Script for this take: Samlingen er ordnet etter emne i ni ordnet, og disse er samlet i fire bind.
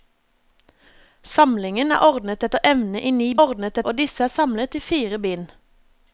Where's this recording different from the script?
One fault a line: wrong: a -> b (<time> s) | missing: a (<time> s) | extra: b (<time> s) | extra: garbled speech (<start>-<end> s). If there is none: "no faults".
no faults